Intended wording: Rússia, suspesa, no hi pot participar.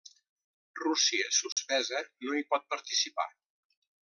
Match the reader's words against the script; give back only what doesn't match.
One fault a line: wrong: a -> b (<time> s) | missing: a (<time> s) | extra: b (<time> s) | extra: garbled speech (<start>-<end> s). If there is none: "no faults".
no faults